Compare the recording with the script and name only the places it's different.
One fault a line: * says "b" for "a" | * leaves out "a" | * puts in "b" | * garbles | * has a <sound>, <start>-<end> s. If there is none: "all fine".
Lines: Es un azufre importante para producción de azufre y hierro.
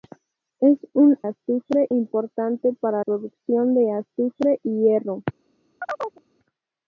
* has a chirp, 5.8-6.2 s